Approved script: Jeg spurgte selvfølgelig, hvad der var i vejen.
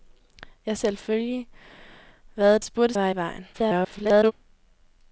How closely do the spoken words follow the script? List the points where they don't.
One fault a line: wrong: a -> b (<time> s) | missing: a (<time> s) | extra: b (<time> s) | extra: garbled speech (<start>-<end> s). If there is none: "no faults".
missing: spurgte (0.8 s)
wrong: der -> spurgte (2.6 s)
extra: garbled speech (3.5-4.3 s)